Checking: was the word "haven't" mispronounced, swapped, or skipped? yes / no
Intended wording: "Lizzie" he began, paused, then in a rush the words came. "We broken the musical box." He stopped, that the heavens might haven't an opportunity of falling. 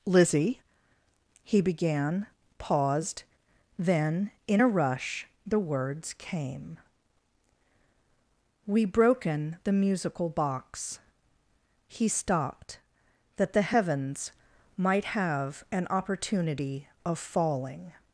yes